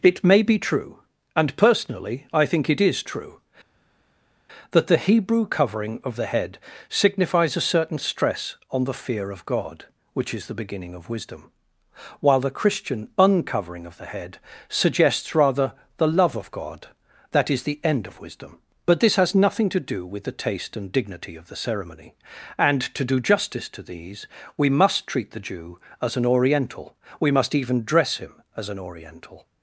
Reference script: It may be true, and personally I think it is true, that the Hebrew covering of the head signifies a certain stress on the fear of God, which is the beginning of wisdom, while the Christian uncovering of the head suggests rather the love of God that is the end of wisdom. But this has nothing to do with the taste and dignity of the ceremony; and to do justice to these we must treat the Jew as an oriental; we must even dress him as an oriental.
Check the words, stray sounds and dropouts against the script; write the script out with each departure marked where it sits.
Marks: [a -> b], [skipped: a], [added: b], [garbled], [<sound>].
It may be true, and personally I think it is true, that the Hebrew covering of the head signifies a certain stress on the fear of God, which is the beginning of wisdom, while the Christian uncovering of the head suggests rather the love of God that is the end of wisdom. But this has nothing to do with the taste and dignity of the ceremony; and to do justice to these we must treat the Jew as an oriental; we must even dress him as an oriental.